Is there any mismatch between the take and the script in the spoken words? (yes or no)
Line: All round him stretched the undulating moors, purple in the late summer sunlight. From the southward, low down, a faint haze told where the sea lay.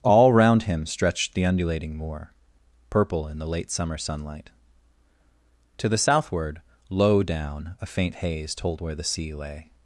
yes